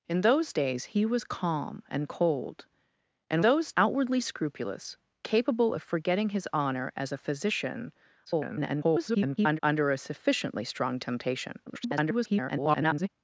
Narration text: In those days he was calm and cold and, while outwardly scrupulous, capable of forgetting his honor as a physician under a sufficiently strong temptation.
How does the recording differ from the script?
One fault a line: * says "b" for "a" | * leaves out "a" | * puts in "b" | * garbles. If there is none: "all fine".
* says "those" for "while"
* garbles
* garbles